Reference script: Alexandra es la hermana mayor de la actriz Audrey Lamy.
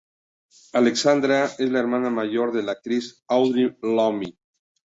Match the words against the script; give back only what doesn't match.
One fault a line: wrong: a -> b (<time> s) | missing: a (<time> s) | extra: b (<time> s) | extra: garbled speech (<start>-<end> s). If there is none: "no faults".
no faults